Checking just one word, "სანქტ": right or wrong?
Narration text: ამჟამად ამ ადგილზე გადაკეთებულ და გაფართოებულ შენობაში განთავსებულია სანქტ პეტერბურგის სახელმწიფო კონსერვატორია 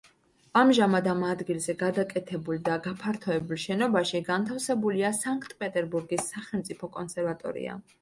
right